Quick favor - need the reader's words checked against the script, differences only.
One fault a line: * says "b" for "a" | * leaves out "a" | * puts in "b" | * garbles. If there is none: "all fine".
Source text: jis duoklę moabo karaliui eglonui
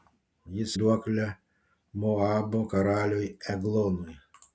all fine